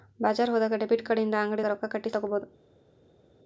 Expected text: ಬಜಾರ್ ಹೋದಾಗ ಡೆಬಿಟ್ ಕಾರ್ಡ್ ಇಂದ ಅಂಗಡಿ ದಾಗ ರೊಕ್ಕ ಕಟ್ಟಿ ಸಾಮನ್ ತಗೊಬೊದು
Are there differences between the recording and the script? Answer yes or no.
yes